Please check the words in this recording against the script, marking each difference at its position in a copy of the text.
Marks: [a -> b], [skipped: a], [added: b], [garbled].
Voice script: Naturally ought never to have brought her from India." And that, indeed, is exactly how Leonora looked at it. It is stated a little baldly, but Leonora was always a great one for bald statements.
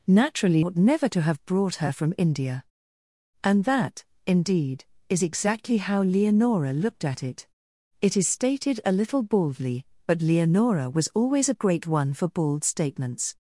Naturally ought never to have brought her from India." And that, indeed, is exactly how Leonora looked at it. It is stated a little baldly, but Leonora was always a great one for bald statements.